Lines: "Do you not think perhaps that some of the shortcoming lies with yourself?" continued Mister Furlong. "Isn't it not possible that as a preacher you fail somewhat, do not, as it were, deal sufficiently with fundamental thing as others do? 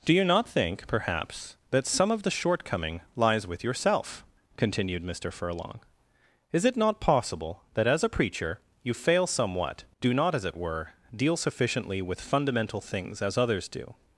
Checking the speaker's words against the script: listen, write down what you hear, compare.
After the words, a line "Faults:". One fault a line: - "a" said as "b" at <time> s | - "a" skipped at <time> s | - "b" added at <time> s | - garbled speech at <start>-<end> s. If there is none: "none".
"Do you not think perhaps that some of the shortcoming lies with yourself?" continued Mister Furlong. "Is it not possible that as a preacher you fail somewhat, do not, as it were, deal sufficiently with fundamental things as others do?
Faults:
- "Isn't" said as "Is" at 6.5 s
- "thing" said as "things" at 12.8 s